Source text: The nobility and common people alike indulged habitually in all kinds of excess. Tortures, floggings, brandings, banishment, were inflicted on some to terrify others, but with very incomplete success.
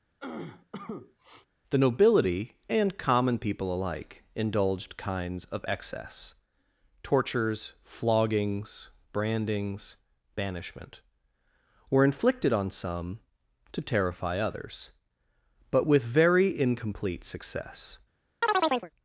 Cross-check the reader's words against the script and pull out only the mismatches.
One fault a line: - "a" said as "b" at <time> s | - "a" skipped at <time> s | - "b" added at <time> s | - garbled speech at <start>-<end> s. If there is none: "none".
- "habitually in all" skipped at 5.0 s